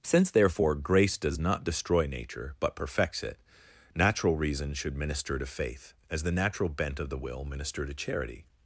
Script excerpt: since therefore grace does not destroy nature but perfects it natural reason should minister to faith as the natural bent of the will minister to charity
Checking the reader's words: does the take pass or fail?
pass